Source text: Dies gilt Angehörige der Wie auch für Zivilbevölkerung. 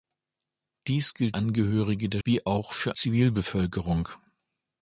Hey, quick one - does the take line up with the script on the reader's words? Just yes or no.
yes